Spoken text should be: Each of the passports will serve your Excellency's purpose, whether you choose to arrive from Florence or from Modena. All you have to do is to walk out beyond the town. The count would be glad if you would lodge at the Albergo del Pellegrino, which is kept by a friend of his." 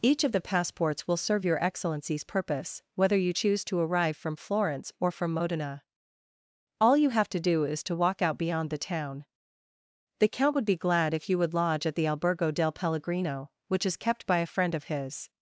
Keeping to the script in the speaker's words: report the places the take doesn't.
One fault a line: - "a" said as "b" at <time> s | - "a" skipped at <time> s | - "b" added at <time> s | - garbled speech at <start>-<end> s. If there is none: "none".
none